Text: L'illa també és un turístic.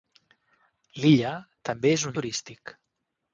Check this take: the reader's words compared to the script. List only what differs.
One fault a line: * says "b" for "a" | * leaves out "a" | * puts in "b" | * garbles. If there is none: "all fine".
all fine